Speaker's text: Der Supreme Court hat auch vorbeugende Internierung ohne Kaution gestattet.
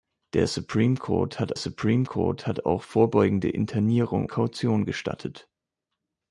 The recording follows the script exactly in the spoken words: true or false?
false